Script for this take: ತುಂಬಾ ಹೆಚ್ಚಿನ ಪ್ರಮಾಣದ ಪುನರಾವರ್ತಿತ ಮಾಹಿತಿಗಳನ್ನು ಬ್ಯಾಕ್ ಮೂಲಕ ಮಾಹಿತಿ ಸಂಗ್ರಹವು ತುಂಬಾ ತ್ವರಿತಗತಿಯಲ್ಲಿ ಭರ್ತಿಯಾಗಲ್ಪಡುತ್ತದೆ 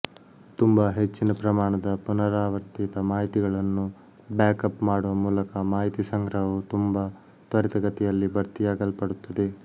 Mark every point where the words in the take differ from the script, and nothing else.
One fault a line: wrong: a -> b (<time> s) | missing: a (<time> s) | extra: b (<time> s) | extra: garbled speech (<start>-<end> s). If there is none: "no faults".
extra: ಅಪ್ ಮಾಡುವ (4.7 s)